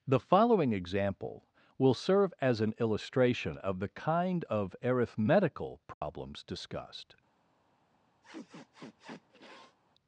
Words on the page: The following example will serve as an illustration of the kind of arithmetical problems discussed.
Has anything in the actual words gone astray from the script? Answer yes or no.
no